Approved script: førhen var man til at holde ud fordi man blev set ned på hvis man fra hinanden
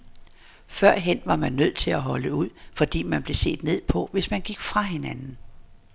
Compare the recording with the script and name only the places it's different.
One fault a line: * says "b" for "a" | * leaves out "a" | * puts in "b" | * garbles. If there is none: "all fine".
* puts in "nødt"
* puts in "gik"